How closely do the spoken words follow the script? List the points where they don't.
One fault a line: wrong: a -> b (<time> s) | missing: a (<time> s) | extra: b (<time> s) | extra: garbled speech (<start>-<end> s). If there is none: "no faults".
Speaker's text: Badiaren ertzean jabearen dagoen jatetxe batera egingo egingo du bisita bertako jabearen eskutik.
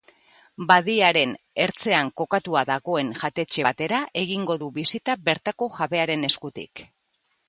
wrong: jabearen -> kokatua (2.2 s)
missing: egingo (4.6 s)